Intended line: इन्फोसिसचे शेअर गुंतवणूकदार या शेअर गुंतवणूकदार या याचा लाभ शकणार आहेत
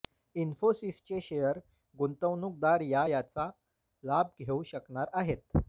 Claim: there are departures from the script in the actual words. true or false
true